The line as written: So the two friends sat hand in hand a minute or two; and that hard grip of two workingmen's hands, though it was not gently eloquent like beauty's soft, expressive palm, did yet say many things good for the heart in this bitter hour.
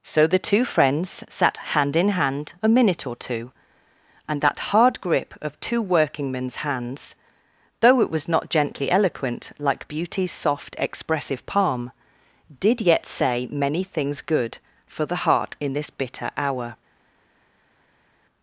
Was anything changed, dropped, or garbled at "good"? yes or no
no